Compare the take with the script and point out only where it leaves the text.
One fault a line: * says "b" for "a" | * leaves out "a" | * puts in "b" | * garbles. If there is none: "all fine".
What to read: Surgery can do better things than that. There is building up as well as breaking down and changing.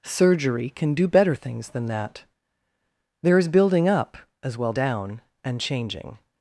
* leaves out "as breaking"